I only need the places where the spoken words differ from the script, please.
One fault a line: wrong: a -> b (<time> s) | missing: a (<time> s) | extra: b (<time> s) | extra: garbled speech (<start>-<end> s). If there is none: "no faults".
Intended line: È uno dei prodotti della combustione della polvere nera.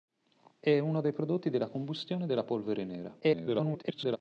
extra: garbled speech (3.2-4.2 s)